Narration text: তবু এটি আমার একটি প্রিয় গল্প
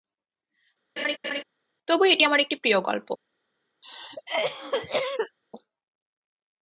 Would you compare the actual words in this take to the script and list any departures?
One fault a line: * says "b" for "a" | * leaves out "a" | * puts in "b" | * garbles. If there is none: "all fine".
all fine